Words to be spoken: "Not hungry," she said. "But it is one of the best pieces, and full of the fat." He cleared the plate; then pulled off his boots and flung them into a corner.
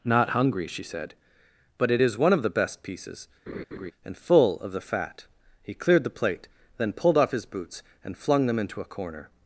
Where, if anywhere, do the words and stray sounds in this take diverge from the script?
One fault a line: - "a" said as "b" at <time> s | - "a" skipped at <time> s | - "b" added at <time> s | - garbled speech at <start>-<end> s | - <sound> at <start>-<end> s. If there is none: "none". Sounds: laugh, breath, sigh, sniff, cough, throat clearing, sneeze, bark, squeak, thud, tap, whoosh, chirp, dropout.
- laugh at 3.5-3.9 s